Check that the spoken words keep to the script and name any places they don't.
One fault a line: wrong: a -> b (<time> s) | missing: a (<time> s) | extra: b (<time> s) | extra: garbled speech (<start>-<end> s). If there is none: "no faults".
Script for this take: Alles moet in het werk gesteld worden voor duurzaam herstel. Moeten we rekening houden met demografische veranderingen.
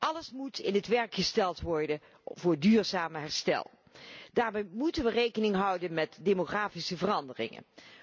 extra: Daarbij (4.3 s)